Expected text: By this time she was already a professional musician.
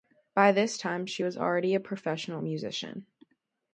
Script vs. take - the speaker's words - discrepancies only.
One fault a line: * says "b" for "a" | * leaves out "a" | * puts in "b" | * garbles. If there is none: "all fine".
all fine